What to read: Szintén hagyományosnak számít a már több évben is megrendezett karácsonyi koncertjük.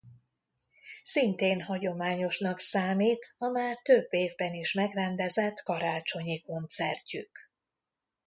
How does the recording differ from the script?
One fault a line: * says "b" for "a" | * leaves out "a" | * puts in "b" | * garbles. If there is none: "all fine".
all fine